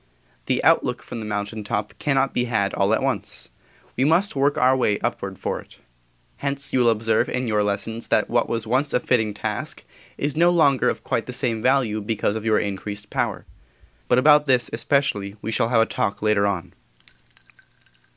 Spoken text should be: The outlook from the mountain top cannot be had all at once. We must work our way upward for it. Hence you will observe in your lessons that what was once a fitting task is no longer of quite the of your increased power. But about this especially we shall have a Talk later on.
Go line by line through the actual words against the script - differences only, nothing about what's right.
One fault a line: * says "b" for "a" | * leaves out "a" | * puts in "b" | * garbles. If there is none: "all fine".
* puts in "same value because"